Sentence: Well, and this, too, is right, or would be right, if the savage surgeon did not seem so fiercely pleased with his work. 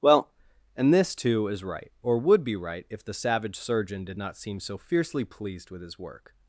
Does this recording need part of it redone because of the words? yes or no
no